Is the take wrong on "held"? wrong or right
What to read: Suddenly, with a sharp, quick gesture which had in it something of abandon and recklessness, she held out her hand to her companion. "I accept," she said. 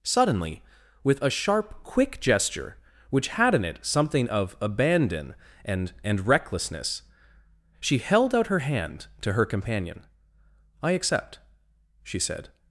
right